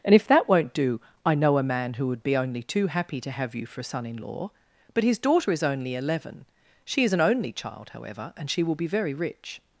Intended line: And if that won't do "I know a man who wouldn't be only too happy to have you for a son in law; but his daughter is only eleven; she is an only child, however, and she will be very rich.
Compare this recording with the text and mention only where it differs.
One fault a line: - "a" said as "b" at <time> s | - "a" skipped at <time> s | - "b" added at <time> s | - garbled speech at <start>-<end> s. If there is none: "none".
- "wouldn't" said as "would" at 2.1 s